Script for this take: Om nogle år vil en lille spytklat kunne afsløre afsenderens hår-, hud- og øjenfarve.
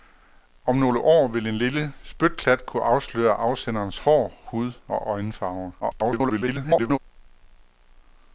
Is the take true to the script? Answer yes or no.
no